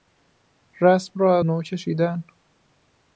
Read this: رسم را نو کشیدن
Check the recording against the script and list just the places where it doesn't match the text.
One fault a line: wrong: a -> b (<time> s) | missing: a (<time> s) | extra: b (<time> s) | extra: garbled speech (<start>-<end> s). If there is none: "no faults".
no faults